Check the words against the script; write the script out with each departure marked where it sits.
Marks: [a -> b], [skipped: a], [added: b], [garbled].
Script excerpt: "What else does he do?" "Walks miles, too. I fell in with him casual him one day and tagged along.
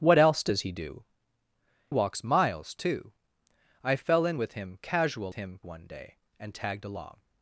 "What else does he do?" "Walks miles, too. I fell in with him casual him one day and tagged along.